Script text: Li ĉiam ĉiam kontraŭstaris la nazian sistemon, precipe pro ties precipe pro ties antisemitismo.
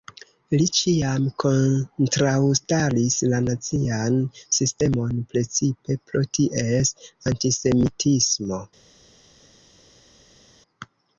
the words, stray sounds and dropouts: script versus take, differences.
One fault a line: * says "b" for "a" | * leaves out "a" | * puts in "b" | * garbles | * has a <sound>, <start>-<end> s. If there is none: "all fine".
* leaves out "ĉiam"
* leaves out "precipe pro ties"